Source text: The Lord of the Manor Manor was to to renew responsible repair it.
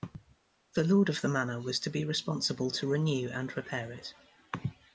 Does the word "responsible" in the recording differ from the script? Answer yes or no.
yes